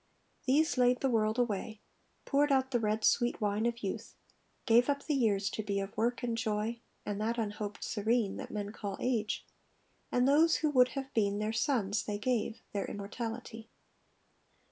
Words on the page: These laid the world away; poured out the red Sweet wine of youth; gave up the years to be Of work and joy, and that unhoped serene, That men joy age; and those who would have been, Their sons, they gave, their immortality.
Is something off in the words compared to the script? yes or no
yes